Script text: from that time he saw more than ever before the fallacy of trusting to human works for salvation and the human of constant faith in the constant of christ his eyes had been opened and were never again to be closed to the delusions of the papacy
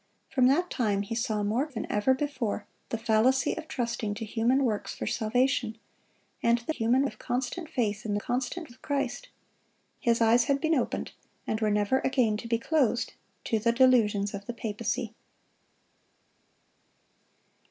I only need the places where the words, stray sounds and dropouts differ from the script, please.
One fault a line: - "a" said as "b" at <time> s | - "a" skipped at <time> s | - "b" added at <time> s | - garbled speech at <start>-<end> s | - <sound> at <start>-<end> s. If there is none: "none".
none